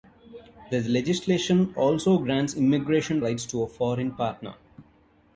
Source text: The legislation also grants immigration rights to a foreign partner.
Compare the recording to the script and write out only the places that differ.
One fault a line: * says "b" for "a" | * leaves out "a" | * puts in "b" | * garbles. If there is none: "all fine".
all fine